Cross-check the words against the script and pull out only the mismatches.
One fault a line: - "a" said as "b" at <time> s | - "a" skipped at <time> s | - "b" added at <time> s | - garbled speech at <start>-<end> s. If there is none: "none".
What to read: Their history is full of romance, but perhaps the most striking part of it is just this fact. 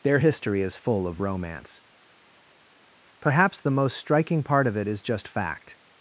- "but" skipped at 1.8 s
- "this" skipped at 5.3 s